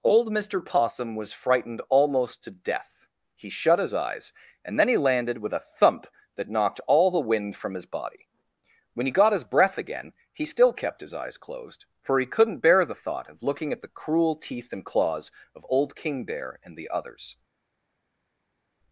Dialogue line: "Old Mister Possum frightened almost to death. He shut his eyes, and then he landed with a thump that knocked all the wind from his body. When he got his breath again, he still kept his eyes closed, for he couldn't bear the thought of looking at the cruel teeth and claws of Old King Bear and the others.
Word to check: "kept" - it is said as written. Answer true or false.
true